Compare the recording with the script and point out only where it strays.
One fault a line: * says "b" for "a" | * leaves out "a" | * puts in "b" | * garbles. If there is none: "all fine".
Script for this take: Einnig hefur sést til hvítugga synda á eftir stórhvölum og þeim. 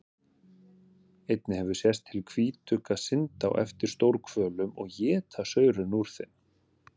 * puts in "éta saurinn úr"